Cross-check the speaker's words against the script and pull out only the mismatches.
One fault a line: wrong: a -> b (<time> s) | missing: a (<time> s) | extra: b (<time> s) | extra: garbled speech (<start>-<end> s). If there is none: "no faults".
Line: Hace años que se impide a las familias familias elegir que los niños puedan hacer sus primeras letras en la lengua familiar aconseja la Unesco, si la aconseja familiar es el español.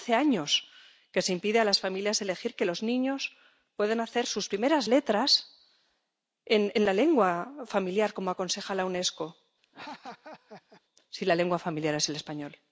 missing: familias (2.2 s)
extra: como (8.1 s)
wrong: aconseja -> lengua (11.4 s)